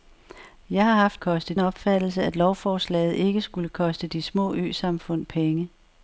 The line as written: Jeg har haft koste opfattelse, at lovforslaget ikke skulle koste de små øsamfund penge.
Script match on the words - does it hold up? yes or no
yes